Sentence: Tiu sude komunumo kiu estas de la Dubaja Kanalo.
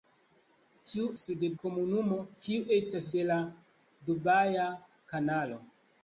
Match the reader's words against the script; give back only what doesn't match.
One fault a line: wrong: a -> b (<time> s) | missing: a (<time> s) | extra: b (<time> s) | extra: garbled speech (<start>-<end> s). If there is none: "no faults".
no faults